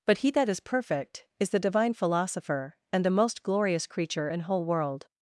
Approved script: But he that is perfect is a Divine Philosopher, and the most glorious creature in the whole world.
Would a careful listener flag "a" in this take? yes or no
yes